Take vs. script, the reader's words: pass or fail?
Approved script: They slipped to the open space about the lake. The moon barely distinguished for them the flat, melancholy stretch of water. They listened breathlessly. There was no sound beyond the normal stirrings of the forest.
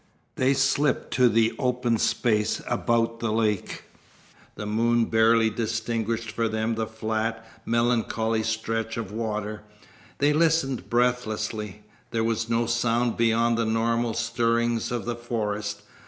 pass